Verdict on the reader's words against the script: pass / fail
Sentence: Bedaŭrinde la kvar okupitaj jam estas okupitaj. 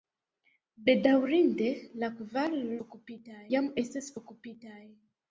pass